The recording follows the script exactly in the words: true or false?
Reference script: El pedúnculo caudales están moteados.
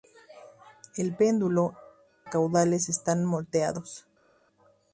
true